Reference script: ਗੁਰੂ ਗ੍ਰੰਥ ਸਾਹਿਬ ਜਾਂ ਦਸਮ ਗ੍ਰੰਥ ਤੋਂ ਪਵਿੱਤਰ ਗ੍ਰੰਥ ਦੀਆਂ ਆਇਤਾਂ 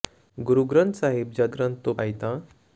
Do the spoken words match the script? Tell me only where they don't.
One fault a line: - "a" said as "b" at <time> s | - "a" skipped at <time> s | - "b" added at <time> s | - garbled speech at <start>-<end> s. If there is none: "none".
- "ਦਸਮ" skipped at 1.5 s
- "ਪਵਿੱਤਰ ਗ੍ਰੰਥ ਦੀਆਂ" skipped at 1.9 s